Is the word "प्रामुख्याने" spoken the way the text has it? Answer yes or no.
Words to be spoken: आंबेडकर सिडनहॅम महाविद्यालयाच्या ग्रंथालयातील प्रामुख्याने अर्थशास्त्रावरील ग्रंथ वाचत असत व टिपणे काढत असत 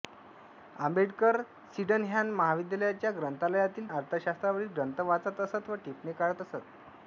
no